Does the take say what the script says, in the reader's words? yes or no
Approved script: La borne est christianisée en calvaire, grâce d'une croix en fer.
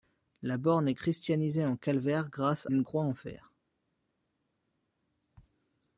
yes